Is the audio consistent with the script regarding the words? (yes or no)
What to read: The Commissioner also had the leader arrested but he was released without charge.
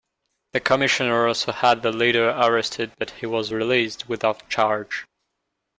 yes